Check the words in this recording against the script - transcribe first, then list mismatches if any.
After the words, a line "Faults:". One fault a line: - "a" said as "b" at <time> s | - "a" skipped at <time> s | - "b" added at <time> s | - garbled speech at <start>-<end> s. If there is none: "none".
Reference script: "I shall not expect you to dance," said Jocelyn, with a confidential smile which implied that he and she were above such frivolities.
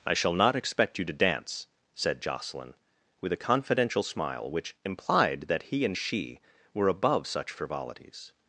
"I shall not expect you to dance," said Jocelyn, with a confidential smile which implied that he and she were above such frivolities.
Faults:
none